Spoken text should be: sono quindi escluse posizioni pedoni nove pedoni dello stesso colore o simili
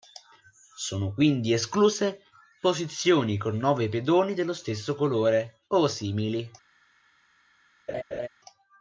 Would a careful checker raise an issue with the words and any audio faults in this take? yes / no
yes